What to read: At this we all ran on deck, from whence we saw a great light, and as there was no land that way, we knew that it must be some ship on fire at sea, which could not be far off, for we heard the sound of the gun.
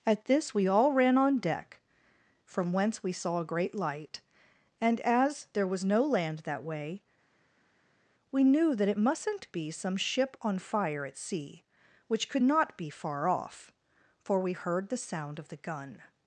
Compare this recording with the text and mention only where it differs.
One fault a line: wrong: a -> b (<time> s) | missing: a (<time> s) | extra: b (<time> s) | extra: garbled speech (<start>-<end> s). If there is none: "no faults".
wrong: must -> mustn't (9.0 s)